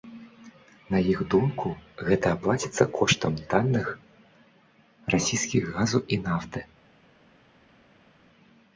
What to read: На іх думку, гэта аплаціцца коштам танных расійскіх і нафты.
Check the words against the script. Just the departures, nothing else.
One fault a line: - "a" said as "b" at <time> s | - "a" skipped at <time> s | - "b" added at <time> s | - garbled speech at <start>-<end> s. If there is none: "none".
- "газу" added at 5.8 s